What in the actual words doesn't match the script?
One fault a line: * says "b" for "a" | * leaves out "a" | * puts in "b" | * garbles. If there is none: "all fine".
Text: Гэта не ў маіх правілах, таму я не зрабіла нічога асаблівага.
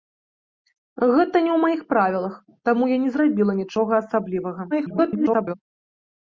* garbles